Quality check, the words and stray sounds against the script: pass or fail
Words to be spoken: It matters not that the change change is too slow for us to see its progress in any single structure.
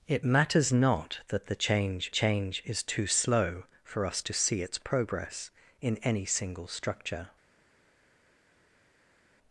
pass